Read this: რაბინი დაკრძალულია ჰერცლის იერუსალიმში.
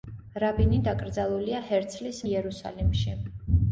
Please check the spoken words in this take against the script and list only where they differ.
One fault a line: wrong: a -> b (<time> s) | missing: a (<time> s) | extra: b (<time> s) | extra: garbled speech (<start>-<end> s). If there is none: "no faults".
no faults